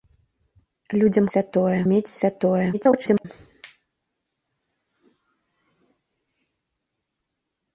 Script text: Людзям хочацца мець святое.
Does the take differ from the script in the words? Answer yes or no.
yes